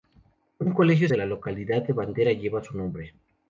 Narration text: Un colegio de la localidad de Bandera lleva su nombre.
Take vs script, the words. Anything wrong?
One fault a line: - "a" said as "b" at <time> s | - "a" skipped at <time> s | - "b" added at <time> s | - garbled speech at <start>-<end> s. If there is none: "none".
none